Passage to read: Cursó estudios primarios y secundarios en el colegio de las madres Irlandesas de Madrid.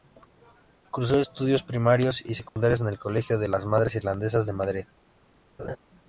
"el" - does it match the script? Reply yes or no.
yes